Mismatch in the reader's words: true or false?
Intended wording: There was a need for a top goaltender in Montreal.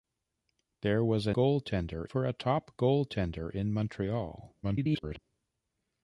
true